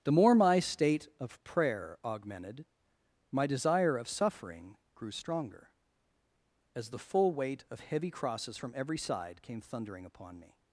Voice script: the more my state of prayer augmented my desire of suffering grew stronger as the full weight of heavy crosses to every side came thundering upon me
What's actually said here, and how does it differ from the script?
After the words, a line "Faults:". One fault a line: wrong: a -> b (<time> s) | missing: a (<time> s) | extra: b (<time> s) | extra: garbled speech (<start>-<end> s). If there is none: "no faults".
the more my state of prayer augmented my desire of suffering grew stronger as the full weight of heavy crosses from every side came thundering upon me
Faults:
wrong: to -> from (8.6 s)